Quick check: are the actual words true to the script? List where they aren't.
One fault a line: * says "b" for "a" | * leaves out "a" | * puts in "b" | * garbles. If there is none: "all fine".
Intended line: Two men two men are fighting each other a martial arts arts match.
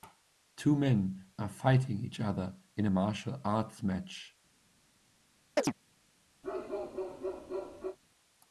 * leaves out "two men"
* puts in "in"
* leaves out "arts"